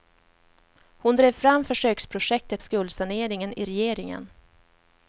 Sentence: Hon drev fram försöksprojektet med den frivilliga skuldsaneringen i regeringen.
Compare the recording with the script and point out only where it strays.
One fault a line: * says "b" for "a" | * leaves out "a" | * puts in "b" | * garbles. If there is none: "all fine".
* leaves out "med den frivilliga"